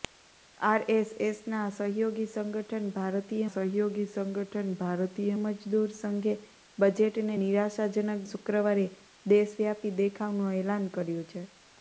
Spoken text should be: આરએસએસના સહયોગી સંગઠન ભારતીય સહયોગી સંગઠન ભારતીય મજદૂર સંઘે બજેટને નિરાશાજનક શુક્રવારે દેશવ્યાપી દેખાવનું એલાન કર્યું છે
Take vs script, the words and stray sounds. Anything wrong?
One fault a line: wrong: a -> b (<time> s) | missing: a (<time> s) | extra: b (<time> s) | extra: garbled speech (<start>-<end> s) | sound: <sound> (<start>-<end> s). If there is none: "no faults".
no faults